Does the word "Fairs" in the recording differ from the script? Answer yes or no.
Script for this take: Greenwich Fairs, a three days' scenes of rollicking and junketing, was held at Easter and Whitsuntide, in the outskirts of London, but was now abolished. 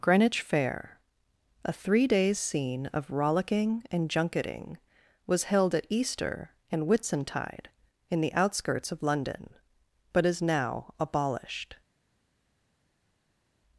yes